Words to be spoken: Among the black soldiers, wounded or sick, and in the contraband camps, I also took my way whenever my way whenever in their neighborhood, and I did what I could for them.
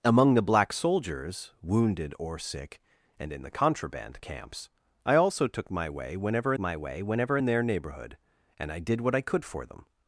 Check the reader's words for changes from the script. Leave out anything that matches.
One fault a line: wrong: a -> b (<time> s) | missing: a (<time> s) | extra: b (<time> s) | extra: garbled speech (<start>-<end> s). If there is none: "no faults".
no faults